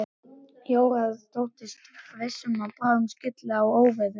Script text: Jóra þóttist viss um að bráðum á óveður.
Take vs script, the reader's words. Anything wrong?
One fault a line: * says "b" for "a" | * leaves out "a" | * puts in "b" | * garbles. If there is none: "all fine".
* puts in "skylli"